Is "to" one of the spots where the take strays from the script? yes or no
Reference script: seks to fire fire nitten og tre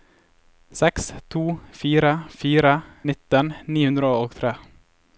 no